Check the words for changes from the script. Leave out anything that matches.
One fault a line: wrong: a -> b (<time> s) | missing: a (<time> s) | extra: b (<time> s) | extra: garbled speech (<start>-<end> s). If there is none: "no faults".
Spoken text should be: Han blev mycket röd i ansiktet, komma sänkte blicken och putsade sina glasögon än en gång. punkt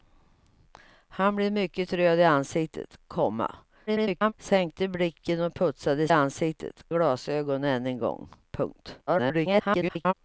extra: garbled speech (3.9-4.3 s)
wrong: sina -> ansiktet (6.1 s)
extra: garbled speech (9.1-10.1 s)